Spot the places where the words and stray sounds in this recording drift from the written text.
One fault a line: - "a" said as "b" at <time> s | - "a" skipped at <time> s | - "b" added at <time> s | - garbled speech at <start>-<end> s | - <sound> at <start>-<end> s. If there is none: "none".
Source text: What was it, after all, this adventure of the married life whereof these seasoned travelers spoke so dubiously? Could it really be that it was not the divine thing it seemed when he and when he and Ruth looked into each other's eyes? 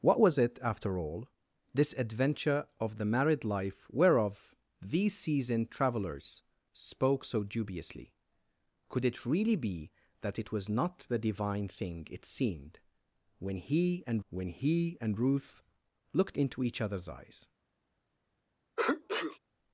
- sneeze at 18.8-19.4 s